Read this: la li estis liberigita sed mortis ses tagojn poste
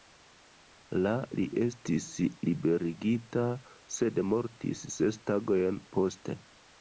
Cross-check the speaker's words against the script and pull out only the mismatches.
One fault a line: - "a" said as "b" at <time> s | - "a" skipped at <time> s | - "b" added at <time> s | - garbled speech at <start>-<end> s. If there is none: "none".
none